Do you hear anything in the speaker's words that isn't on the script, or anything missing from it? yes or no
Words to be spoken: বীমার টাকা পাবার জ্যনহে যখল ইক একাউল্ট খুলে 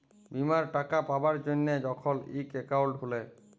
no